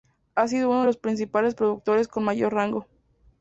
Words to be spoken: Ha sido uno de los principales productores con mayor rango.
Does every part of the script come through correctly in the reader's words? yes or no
yes